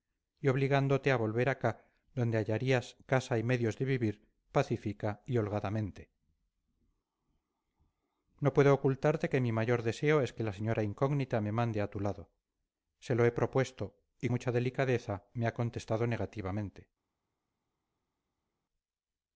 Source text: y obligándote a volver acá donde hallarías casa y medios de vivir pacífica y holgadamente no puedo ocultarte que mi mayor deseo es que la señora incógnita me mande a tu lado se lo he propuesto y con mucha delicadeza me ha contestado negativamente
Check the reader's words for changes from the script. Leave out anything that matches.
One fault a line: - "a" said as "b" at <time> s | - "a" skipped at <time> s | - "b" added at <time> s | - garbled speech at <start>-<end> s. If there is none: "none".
- "con" skipped at 14.3 s